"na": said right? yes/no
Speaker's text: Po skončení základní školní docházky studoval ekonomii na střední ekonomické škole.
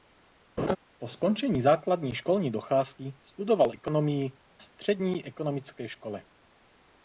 no